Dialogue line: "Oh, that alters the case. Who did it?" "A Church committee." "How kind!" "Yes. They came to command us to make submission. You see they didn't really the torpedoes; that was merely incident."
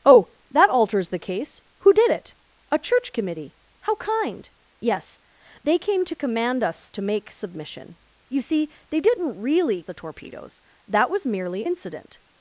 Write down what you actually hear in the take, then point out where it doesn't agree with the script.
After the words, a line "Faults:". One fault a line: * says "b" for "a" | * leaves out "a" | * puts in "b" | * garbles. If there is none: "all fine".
"Oh, that alters the case. Who did it?" "A Church committee." "How kind!" "Yes. They came to command us to make submission. You see they didn't really the torpedoes; that was merely incident."
Faults:
all fine